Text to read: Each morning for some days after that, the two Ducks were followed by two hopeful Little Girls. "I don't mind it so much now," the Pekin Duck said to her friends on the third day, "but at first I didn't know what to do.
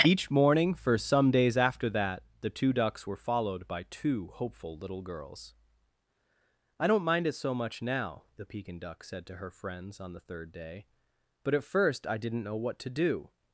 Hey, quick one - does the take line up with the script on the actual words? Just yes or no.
yes